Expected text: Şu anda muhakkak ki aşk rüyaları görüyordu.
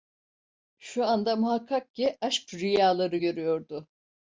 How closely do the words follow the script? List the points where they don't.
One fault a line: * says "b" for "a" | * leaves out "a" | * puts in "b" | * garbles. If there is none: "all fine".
all fine